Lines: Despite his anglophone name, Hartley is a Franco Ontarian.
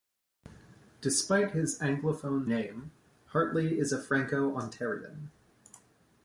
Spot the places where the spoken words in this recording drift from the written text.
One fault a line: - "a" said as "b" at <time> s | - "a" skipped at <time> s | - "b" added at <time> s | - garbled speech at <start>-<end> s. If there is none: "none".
none